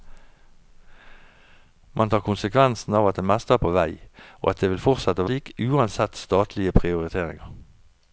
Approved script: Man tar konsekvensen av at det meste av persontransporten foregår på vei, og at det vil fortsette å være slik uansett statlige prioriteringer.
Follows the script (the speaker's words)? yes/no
no